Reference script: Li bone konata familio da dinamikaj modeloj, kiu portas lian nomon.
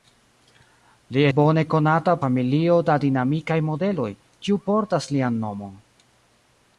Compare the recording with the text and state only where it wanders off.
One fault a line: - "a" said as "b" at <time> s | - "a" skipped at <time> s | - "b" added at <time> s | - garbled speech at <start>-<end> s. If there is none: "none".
none